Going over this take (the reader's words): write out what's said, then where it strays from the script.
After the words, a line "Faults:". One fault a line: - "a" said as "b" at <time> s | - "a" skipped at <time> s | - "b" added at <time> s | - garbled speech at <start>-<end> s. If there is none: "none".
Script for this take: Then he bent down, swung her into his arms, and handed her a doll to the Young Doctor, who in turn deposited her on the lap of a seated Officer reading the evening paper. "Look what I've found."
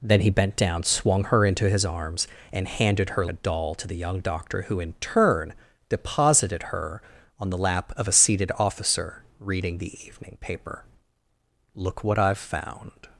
Then he bent down, swung her into his arms, and handed her a doll to the Young Doctor, who in turn deposited her on the lap of a seated Officer reading the evening paper. "Look what I've found."
Faults:
none